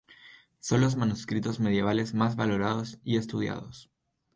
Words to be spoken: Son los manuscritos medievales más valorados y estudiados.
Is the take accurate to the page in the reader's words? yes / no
yes